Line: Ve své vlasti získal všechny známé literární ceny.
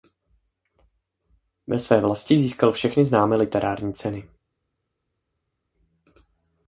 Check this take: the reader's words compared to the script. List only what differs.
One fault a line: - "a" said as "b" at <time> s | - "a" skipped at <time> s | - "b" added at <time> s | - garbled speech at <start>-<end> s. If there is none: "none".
none